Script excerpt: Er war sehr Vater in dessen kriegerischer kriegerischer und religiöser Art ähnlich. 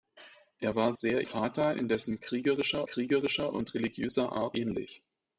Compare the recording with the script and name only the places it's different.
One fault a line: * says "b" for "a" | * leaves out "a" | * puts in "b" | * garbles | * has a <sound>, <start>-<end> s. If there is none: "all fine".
all fine